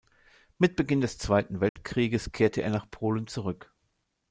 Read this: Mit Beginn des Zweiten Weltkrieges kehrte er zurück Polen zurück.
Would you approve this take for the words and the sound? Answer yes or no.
no